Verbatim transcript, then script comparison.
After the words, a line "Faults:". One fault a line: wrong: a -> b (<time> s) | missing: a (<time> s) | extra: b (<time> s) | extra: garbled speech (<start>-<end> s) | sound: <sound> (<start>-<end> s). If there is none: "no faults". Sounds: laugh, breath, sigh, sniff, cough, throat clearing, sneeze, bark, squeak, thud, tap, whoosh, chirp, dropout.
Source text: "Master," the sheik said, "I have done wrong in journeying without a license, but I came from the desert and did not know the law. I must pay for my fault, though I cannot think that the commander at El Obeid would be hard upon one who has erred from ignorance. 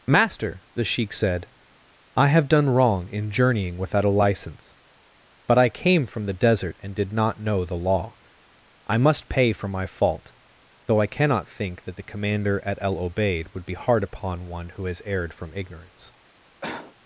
"Master," the sheik said, "I have done wrong in journeying without a license, but I came from the desert and did not know the law. I must pay for my fault, though I cannot think that the commander at El Obeid would be hard upon one who has erred from ignorance.
Faults:
sound: cough (16.6-16.9 s)